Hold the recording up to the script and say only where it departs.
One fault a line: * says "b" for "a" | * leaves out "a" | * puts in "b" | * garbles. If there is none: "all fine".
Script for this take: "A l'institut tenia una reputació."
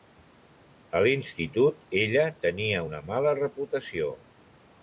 * puts in "ella"
* puts in "mala"